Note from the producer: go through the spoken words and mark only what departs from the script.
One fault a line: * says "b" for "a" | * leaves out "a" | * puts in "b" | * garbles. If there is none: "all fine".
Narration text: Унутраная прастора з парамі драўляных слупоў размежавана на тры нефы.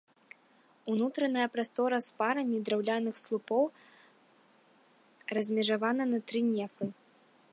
all fine